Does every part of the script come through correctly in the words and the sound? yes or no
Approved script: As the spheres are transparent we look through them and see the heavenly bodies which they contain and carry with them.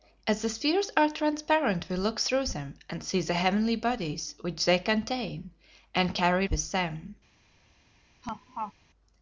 no